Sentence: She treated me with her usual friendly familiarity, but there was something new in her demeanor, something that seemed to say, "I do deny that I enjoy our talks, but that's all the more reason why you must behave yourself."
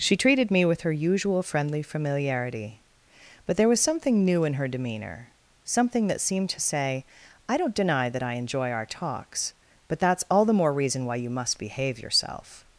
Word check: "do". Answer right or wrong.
wrong